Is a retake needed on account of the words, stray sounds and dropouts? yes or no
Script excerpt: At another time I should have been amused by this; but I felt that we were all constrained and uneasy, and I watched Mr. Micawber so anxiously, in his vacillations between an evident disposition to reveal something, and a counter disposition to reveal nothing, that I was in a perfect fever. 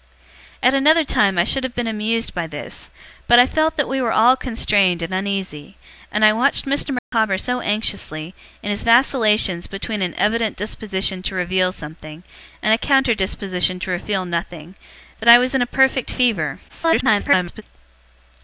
yes